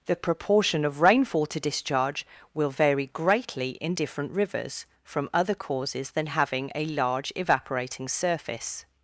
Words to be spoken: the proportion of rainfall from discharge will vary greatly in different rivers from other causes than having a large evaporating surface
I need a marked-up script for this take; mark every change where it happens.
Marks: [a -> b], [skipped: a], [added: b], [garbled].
the proportion of rainfall [from -> to] discharge will vary greatly in different rivers from other causes than having a large evaporating surface